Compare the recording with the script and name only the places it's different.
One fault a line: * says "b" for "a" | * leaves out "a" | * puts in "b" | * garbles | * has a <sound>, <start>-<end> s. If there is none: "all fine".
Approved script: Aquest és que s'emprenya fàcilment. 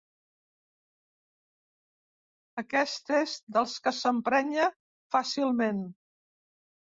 * puts in "dels"